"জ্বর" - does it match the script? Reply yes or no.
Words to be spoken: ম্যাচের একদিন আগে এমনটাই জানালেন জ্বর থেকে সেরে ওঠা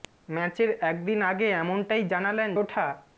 no